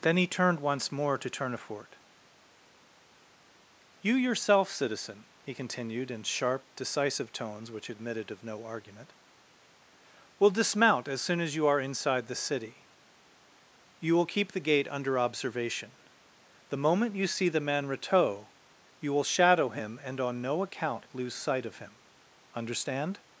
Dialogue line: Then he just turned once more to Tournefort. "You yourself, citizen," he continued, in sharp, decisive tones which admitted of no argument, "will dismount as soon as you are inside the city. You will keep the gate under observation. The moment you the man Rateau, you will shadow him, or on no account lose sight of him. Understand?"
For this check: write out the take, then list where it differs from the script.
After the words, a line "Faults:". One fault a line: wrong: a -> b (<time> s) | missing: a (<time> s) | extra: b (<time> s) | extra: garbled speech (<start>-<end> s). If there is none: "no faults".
Then he turned once more to Tournefort. "You yourself, citizen," he continued, in sharp, decisive tones which admitted of no argument, "will dismount as soon as you are inside the city. You will keep the gate under observation. The moment you see the man Rateau, you will shadow him, and on no account lose sight of him. Understand?"
Faults:
missing: just (0.3 s)
extra: see (17.3 s)
wrong: or -> and (20.0 s)